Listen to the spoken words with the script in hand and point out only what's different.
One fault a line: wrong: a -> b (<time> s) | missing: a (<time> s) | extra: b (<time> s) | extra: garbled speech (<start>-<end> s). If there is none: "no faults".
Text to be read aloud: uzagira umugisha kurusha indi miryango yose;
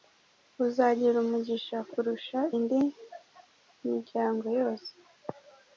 no faults